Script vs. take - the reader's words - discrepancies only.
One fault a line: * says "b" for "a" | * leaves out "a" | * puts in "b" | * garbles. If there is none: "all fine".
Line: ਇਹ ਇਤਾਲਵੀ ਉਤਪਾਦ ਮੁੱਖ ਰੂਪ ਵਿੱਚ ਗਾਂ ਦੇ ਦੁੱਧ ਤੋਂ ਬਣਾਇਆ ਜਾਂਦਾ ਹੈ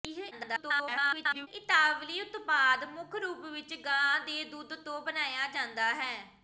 * garbles